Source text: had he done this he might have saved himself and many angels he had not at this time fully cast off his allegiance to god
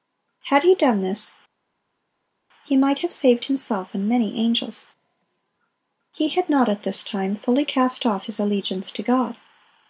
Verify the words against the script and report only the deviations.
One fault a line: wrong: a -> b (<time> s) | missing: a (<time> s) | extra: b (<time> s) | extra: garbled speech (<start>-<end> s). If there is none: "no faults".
no faults